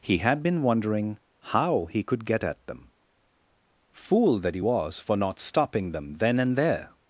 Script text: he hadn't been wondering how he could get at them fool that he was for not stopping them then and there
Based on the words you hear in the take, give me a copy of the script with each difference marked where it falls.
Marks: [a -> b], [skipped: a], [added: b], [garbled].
he [hadn't -> had] been wondering how he could get at them fool that he was for not stopping them then and there